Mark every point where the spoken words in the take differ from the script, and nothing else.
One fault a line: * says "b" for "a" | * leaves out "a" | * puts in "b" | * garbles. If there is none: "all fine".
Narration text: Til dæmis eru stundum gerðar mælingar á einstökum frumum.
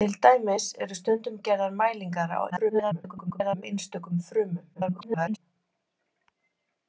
* garbles
* garbles